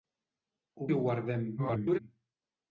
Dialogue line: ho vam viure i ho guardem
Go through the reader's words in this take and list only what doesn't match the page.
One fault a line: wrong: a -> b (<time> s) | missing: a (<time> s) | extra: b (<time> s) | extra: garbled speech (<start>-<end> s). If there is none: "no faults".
missing: vam viure (0.9 s)
extra: garbled speech (1.6-2.0 s)